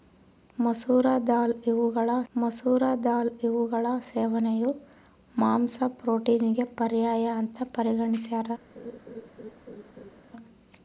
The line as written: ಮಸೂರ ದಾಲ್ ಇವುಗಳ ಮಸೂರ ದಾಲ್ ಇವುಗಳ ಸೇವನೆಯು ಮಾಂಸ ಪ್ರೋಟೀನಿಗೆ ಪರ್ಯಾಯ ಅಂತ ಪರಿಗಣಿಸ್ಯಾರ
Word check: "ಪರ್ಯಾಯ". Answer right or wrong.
right